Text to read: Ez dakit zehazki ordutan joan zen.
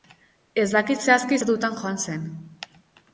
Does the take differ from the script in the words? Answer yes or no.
no